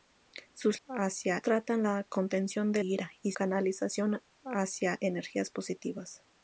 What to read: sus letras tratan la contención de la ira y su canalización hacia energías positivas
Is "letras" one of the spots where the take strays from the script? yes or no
yes